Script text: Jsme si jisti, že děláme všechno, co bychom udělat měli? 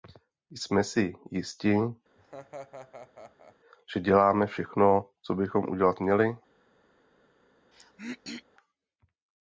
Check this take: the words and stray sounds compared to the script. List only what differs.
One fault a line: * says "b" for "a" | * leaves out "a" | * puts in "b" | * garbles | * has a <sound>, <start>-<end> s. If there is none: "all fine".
* has a laugh, 2.2-3.6 s
* has a throat clearing, 7.7-8.4 s